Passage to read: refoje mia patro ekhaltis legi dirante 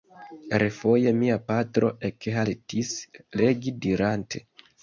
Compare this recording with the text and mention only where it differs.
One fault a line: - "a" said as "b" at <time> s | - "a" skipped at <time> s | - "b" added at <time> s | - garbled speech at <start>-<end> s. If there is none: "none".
none